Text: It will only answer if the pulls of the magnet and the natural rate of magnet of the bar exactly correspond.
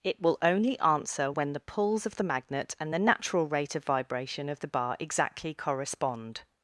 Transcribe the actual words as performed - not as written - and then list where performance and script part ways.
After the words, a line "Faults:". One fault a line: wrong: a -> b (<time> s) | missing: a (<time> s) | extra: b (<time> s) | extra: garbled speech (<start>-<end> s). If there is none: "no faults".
It will only answer when the pulls of the magnet and the natural rate of vibration of the bar exactly correspond.
Faults:
wrong: if -> when (1.3 s)
wrong: magnet -> vibration (3.8 s)